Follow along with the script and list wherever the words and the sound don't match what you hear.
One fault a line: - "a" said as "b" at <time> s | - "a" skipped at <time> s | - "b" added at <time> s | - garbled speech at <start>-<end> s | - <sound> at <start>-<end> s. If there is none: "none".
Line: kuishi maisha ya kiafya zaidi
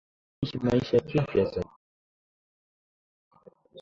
none